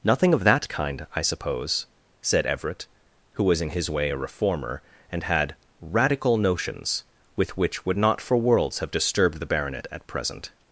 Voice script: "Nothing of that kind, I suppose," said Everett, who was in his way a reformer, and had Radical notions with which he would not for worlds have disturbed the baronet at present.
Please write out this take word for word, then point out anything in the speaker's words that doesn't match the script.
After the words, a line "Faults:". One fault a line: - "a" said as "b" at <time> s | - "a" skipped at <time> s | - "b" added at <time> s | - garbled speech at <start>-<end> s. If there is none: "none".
"Nothing of that kind, I suppose," said Everett, who was in his way a reformer, and had Radical notions with which would not for worlds have disturbed the baronet at present.
Faults:
- "he" skipped at 7.9 s